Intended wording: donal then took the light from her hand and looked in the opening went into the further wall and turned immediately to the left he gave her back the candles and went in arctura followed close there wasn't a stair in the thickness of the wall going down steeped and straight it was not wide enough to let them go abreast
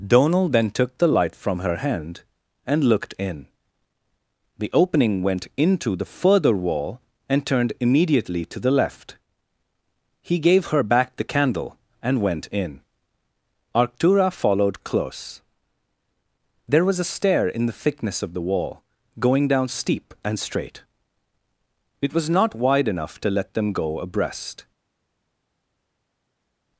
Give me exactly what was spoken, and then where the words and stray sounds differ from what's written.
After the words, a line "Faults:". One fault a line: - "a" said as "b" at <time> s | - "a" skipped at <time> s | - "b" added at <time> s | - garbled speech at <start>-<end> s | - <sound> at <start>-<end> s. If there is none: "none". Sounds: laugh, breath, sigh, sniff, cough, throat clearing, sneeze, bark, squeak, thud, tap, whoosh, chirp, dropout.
donal then took the light from her hand and looked in the opening went into the further wall and turned immediately to the left he gave her back the candle and went in arctura followed close there was a stair in the thickness of the wall going down steep and straight it was not wide enough to let them go abreast
Faults:
- "candles" said as "candle" at 11.2 s
- "wasn't" said as "was" at 16.9 s
- "steeped" said as "steep" at 19.7 s